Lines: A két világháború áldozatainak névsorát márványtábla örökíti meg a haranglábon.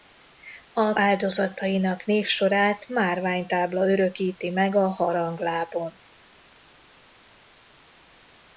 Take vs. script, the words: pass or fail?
fail